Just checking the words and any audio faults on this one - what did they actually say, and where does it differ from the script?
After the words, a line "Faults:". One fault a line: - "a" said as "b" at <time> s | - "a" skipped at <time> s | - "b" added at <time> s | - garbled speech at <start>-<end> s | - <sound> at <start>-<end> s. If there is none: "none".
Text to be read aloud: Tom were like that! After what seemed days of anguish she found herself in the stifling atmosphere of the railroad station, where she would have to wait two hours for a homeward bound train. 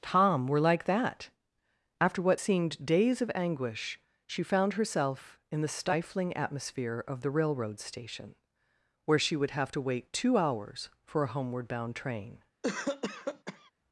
Tom were like that! After what seemed days of anguish she found herself in the stifling atmosphere of the railroad station, where she would have to wait two hours for a homeward bound train.
Faults:
- cough at 12.6-13.7 s